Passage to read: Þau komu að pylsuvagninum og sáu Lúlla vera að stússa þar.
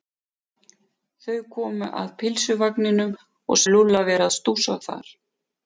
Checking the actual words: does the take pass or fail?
fail